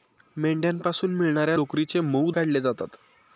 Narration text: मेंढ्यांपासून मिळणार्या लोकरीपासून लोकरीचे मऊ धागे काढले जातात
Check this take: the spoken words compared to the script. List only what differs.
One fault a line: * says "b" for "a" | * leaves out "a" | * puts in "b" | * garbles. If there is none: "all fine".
* leaves out "लोकरीपासून"
* leaves out "धागे"